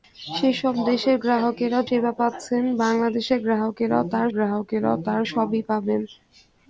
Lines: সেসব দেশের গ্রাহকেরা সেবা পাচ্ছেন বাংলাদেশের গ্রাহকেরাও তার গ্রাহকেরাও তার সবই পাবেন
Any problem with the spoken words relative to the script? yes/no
no